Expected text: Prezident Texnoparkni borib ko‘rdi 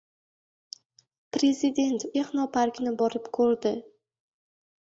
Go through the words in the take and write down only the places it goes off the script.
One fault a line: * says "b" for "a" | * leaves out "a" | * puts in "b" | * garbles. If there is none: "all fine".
all fine